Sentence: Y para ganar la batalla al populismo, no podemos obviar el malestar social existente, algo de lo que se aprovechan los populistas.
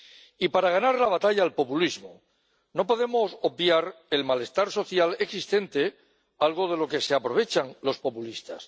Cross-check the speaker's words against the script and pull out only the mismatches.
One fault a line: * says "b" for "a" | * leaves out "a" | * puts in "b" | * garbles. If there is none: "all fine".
all fine